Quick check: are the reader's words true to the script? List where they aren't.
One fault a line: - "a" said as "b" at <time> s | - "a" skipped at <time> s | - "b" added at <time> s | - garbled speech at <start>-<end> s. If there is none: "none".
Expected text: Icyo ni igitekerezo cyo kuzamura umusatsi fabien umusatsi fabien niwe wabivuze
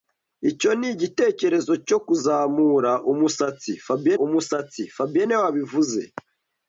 none